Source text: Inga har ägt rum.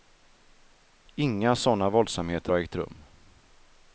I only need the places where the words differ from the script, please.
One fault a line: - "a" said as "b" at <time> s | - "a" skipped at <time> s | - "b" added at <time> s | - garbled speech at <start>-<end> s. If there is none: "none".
- "sådana våldsamheter" added at 1.6 s